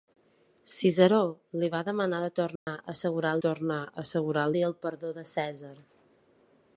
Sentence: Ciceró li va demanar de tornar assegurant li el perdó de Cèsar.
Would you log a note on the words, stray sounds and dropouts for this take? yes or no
yes